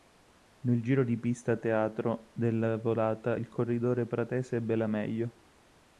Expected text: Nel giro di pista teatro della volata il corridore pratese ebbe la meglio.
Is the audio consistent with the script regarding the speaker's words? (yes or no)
yes